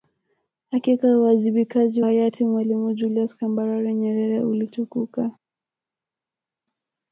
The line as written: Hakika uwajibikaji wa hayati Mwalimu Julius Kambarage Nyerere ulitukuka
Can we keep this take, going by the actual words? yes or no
no